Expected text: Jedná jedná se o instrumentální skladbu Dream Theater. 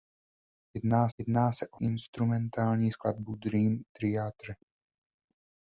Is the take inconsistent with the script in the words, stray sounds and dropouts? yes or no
no